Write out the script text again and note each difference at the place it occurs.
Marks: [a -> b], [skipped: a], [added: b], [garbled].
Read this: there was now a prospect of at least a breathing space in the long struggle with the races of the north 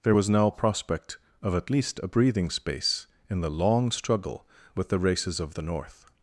there was now [skipped: a] prospect of at least a breathing space in the long struggle with the races of the north